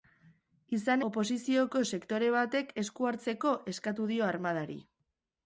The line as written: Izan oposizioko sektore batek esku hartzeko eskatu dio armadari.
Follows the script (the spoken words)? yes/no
yes